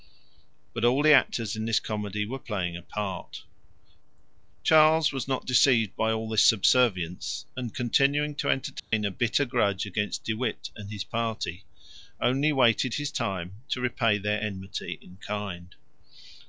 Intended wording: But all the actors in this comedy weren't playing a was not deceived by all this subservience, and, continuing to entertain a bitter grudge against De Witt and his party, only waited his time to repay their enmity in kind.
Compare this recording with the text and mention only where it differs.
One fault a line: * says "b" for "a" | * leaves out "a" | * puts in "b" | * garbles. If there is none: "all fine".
* says "were" for "weren't"
* puts in "part Charles"